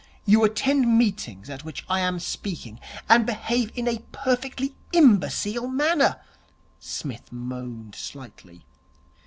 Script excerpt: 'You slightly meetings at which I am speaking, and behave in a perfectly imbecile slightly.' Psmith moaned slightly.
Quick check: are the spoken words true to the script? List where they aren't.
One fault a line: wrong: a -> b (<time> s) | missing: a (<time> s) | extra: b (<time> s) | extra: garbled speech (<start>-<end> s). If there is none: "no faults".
wrong: slightly -> attend (0.4 s)
wrong: slightly -> manner (5.7 s)